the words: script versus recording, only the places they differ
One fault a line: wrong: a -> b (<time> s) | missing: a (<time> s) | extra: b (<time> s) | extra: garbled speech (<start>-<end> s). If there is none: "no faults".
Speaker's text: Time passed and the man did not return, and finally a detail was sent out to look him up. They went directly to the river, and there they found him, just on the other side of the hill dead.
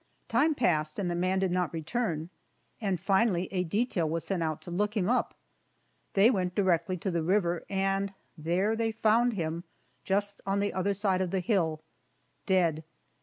no faults